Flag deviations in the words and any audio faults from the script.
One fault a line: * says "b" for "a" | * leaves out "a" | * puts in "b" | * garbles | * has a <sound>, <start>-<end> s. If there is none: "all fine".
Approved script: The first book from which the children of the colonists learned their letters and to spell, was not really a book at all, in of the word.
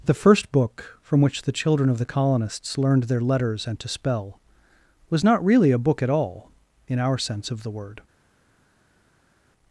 * puts in "our sense"